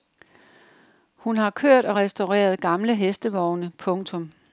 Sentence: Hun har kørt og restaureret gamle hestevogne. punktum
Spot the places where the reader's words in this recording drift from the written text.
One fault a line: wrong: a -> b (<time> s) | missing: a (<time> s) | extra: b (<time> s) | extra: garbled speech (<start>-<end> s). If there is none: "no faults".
no faults